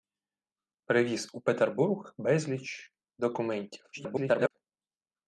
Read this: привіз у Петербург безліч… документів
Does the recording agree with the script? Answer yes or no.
no